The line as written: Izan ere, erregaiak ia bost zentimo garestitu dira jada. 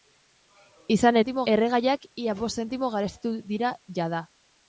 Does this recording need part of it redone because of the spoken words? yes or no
yes